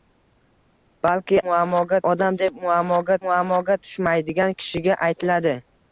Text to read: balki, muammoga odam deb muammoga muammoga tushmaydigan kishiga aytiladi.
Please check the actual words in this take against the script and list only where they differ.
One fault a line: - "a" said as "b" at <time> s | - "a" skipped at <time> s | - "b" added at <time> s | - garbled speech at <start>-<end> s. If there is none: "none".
none